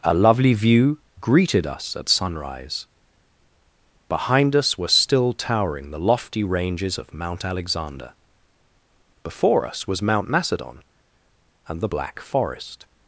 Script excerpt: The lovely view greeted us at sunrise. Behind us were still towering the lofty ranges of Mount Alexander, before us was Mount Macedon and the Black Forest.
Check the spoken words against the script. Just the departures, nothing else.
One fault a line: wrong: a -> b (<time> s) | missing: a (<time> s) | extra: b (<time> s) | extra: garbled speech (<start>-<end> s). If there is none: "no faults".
wrong: The -> A (0.0 s)